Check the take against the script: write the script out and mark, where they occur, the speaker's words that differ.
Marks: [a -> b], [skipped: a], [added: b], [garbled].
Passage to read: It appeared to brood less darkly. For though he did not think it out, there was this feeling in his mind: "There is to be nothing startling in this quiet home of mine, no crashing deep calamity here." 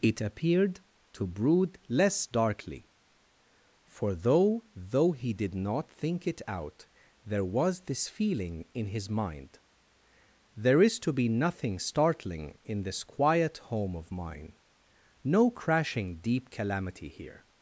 It appeared to brood less darkly. For though [added: though] he did not think it out, there was this feeling in his mind: "There is to be nothing startling in this quiet home of mine, no crashing deep calamity here."